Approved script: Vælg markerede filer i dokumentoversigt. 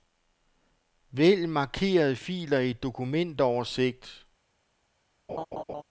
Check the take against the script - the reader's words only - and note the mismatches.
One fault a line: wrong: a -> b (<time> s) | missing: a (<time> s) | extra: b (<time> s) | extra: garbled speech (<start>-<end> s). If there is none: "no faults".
no faults